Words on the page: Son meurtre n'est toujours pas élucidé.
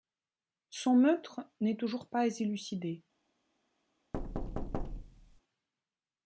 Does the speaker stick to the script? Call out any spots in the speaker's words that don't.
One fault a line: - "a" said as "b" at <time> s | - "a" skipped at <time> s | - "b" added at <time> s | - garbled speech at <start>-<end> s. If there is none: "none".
none